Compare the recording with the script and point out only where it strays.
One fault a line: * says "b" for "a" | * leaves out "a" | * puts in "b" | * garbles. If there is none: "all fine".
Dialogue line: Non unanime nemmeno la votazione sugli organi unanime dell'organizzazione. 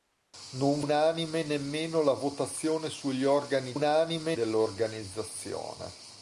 all fine